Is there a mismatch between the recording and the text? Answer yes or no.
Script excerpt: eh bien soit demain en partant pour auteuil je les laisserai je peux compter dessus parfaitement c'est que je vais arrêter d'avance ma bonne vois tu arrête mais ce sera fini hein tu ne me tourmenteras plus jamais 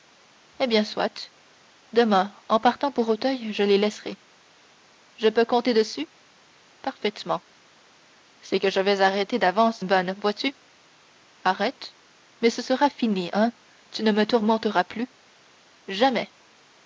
yes